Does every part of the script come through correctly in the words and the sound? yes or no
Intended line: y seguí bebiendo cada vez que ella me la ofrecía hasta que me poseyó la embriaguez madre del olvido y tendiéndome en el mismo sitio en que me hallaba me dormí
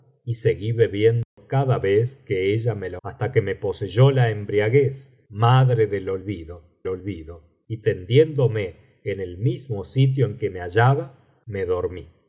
no